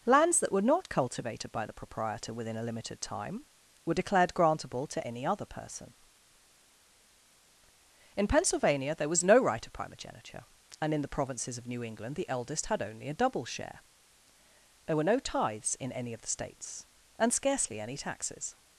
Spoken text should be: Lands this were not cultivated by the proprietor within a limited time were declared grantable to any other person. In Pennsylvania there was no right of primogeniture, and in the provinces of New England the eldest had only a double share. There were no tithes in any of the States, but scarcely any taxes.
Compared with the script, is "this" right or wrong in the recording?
wrong